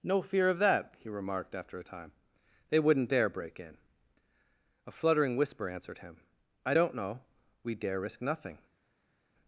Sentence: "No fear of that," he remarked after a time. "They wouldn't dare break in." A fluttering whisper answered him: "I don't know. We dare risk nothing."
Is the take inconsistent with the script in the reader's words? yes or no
no